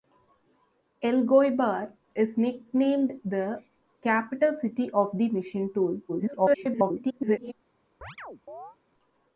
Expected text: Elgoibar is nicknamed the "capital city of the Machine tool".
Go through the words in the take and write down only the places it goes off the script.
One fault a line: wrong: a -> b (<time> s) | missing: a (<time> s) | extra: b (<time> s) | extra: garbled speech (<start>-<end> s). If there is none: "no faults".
extra: garbled speech (6.1-7.5 s)